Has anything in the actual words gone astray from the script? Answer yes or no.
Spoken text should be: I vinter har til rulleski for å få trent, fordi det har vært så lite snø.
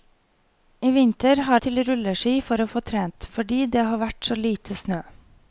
no